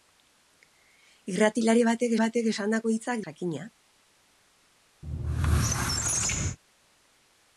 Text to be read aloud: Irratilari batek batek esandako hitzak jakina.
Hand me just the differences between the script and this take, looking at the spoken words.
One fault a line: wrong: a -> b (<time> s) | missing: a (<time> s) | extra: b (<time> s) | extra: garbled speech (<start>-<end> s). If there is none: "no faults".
no faults